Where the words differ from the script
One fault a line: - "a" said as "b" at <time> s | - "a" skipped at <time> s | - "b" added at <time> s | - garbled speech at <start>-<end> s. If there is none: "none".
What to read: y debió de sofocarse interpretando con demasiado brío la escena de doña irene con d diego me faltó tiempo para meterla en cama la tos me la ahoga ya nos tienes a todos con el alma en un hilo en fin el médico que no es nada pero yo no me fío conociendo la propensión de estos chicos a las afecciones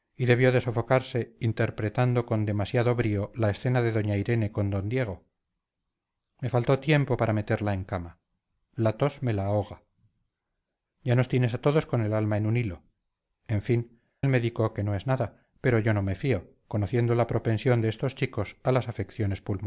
none